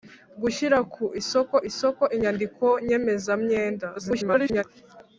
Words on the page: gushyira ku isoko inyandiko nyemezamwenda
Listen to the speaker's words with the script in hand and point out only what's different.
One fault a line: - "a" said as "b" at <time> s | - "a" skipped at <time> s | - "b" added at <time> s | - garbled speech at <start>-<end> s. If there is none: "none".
- "isoko" added at 1.7 s
- garbled speech at 4.0-4.6 s